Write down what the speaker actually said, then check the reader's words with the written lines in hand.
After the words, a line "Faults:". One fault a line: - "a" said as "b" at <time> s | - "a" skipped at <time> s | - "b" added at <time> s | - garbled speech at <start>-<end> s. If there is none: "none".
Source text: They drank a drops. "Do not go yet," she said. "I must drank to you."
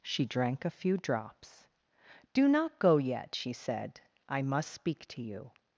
She drank a few drops. "Do not go yet," she said. "I must speak to you."
Faults:
- "They" said as "She" at 0.0 s
- "few" added at 0.7 s
- "drank" said as "speak" at 4.7 s